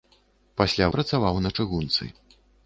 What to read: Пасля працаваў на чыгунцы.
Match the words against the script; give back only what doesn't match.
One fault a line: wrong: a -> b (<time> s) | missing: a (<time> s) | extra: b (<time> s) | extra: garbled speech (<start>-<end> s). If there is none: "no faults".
no faults